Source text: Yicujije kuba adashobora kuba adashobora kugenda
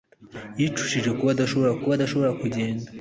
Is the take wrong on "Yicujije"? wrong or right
right